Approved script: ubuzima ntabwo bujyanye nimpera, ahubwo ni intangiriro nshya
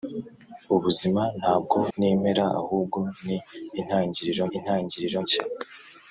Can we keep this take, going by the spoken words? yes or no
no